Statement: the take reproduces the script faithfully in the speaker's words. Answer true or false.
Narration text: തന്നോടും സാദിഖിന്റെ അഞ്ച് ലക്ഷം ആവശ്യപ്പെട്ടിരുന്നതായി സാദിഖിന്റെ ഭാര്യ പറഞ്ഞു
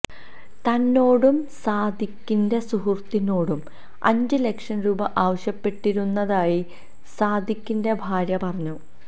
false